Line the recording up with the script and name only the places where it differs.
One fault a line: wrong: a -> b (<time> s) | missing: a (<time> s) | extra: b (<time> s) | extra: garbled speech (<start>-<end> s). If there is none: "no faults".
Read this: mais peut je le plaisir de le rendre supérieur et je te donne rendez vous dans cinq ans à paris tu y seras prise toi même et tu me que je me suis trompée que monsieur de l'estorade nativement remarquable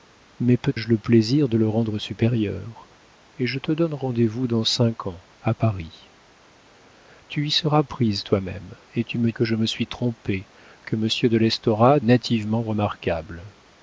no faults